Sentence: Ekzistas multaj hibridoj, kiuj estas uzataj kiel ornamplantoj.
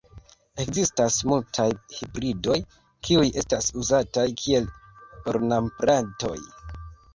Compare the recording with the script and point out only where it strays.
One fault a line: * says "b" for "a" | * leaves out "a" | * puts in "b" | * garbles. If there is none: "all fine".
all fine